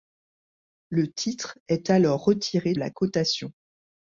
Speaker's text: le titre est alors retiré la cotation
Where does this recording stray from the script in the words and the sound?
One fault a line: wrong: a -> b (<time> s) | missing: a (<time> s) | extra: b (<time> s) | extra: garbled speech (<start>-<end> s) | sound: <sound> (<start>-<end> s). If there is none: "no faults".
no faults